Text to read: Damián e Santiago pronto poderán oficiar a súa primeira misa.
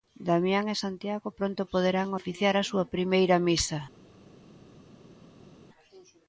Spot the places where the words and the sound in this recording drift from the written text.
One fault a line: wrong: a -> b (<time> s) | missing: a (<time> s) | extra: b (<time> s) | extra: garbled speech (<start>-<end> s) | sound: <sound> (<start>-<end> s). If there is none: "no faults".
no faults